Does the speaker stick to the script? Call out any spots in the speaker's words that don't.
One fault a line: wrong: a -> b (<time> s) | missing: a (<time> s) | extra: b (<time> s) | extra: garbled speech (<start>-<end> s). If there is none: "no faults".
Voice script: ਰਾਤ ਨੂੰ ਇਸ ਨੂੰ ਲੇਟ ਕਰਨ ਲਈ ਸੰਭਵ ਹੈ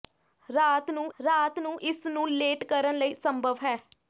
extra: ਰਾਤ ਨੂੰ (1.2 s)